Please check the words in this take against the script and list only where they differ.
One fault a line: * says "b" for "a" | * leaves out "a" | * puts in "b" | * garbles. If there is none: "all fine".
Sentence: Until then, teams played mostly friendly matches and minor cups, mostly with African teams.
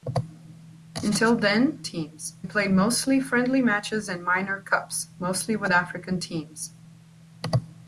all fine